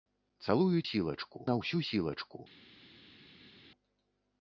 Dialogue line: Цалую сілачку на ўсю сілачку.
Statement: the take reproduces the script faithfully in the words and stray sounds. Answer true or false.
true